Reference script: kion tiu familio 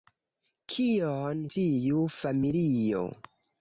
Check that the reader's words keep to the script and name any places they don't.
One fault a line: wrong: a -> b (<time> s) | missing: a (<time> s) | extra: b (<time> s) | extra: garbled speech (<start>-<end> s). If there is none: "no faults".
no faults